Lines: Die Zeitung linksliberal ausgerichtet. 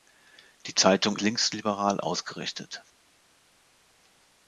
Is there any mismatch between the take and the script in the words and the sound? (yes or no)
no